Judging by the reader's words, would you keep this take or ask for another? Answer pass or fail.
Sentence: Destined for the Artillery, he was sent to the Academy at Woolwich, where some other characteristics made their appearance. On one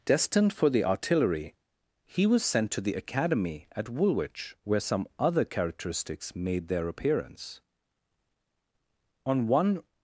pass